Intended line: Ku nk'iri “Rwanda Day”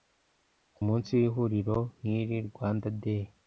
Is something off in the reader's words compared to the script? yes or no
yes